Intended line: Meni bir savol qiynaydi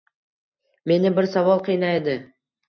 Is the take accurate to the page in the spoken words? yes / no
yes